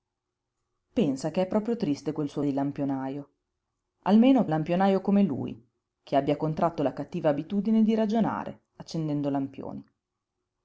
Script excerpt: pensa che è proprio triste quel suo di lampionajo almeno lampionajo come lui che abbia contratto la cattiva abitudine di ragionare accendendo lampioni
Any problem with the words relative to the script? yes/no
no